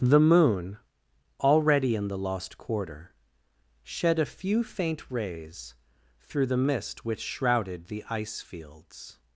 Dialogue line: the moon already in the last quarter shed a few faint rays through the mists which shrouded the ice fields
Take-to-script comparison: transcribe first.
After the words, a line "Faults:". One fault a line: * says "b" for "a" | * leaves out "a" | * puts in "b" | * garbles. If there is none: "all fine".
the moon already in the lost quarter shed a few faint rays through the mist which shrouded the ice fields
Faults:
* says "lost" for "last"
* says "mist" for "mists"